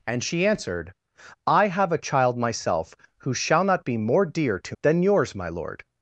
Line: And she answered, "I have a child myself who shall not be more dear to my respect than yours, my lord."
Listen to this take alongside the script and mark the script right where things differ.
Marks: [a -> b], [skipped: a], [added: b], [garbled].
And she answered, "I have a child myself who shall not be more dear to [skipped: my respect] than yours, my lord."